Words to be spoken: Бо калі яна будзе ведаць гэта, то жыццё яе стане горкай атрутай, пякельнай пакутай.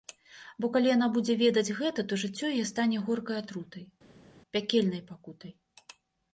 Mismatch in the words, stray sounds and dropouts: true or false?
false